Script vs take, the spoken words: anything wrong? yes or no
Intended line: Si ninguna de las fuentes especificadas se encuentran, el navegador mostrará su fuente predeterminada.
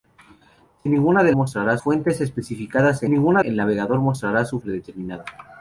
yes